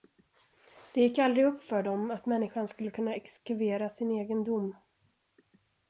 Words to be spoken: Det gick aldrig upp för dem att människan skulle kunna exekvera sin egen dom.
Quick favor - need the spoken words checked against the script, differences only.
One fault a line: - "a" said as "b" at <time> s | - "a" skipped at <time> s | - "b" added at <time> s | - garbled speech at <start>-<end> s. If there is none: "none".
none